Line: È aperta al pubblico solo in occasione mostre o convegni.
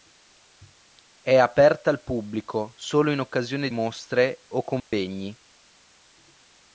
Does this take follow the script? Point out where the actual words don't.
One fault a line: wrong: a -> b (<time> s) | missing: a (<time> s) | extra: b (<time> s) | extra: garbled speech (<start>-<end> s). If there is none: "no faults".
no faults